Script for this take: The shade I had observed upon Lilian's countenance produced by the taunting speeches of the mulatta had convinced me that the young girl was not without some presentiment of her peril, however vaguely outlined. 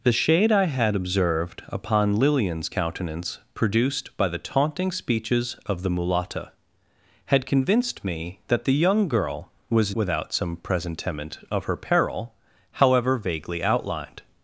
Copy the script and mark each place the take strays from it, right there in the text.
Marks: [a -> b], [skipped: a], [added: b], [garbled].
The shade I had observed upon Lilian's countenance produced by the taunting speeches of the mulatta had convinced me that the young girl was [skipped: not] without some presentiment of her peril, however vaguely outlined.